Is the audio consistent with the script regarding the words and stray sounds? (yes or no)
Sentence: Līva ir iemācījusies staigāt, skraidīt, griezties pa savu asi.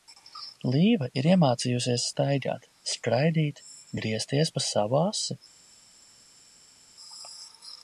yes